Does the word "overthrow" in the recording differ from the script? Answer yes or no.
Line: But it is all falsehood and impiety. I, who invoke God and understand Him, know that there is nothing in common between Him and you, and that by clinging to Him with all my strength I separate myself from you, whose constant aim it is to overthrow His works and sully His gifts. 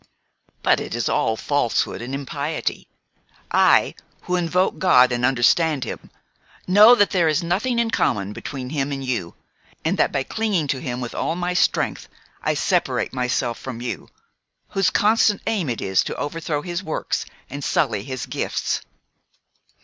no